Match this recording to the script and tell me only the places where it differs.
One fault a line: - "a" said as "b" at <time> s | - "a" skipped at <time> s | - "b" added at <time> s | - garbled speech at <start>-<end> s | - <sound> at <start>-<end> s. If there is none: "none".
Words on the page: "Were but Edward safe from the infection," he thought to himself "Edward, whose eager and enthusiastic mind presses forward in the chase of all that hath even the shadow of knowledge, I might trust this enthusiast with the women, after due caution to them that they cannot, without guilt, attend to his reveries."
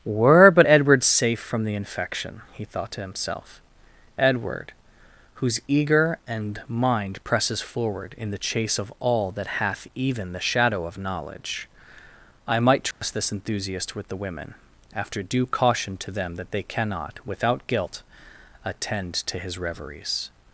- "enthusiastic" skipped at 6.6 s
- dropout at 12.9-13.0 s